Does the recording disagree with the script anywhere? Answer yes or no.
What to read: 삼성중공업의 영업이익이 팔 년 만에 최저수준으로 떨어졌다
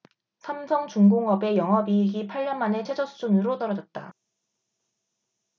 no